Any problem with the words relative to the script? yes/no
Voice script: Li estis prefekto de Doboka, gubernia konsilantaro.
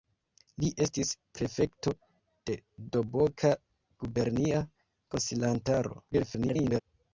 yes